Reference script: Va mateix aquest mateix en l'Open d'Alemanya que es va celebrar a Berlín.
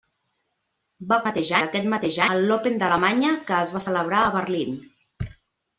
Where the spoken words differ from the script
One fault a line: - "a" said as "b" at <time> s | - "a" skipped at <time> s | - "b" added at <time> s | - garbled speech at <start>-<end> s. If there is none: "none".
none